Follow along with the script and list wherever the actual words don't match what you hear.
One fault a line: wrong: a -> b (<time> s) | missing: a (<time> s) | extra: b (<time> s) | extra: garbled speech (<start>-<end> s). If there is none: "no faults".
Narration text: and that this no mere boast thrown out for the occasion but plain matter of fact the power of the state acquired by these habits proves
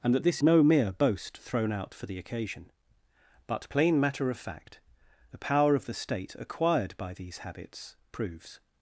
no faults